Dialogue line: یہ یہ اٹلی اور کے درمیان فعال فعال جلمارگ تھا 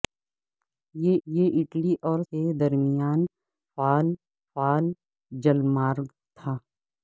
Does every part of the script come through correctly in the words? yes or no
yes